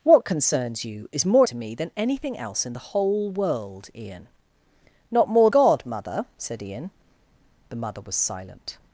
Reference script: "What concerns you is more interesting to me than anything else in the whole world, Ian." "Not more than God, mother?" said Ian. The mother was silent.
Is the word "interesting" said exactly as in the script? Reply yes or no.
no